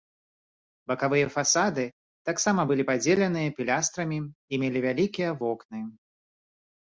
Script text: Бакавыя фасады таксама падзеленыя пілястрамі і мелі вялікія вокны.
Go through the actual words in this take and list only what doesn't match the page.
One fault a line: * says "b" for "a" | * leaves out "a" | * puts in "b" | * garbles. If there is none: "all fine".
* puts in "былі"